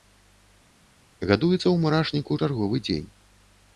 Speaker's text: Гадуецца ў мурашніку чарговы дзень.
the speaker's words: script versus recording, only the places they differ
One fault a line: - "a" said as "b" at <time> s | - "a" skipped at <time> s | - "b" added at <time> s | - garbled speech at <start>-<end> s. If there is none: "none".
none